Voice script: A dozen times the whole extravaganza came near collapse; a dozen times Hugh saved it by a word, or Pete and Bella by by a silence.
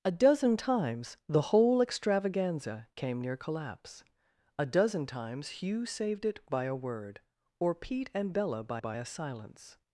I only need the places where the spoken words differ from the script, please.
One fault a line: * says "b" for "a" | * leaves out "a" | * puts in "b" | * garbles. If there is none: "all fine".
all fine